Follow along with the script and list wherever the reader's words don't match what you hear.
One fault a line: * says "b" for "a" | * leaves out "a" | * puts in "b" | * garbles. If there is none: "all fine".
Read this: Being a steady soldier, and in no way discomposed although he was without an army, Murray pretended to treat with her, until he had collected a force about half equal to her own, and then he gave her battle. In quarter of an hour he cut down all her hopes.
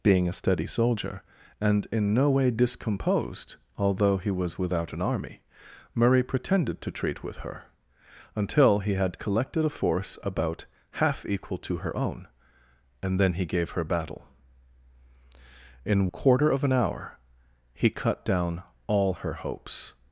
all fine